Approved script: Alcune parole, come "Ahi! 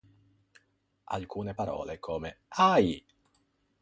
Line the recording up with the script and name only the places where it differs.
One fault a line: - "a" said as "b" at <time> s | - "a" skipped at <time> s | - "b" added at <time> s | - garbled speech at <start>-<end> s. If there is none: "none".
none